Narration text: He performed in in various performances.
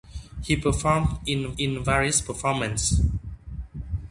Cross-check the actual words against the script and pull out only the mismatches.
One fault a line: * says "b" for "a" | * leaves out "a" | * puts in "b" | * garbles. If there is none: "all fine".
all fine